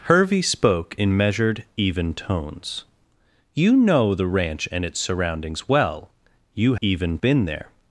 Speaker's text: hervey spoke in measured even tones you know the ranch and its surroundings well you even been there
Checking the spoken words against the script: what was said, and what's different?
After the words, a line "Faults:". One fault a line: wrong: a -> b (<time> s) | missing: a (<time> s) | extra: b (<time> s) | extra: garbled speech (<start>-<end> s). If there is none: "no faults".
hervey spoke in measured even tones you know the ranch and its surroundings well you even been there
Faults:
no faults